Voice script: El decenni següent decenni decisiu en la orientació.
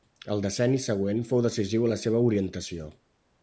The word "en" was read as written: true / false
true